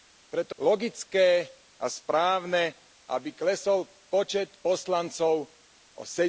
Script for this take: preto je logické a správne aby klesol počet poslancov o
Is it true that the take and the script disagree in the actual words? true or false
true